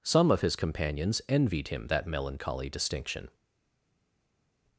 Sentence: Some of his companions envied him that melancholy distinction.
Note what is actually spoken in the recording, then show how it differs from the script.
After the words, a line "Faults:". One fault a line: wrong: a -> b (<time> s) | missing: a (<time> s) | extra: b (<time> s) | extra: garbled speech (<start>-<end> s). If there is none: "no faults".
Some of his companions envied him that melancholy distinction.
Faults:
no faults